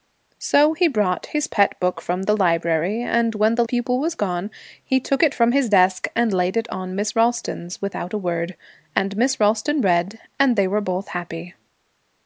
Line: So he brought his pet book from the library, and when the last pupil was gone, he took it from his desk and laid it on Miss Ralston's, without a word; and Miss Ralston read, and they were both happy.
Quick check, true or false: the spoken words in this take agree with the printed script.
false